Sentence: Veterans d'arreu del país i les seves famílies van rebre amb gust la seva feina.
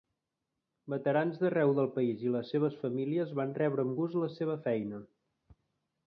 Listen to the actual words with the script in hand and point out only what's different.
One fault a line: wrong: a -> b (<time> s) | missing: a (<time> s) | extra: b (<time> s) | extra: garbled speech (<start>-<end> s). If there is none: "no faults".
no faults